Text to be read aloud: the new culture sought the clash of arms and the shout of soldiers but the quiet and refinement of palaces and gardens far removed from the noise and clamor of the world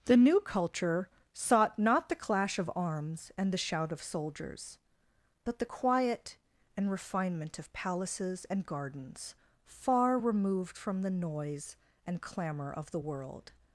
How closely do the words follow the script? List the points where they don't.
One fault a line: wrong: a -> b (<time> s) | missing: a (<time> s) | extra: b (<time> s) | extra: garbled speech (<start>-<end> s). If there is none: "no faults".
extra: not (1.8 s)